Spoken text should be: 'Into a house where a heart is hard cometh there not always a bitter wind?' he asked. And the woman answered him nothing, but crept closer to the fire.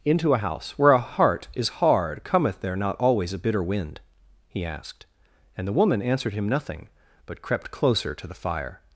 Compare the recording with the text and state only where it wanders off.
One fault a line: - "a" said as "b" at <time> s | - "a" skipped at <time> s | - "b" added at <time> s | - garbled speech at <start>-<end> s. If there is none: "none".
none